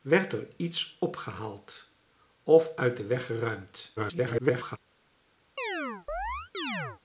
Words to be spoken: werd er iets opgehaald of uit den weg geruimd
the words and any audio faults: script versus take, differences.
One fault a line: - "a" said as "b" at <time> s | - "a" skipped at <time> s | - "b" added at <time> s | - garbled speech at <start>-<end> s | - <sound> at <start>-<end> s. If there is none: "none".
- garbled speech at 4.0-4.8 s
- chirp at 5.6-7.0 s